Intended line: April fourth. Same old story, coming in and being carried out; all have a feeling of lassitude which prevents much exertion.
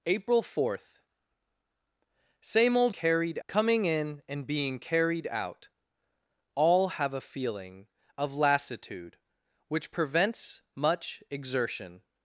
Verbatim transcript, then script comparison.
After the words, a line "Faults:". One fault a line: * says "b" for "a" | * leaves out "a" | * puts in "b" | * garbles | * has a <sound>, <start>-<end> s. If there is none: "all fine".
April fourth. Same old carried, coming in and being carried out; all have a feeling of lassitude which prevents much exertion.
Faults:
* says "carried" for "story"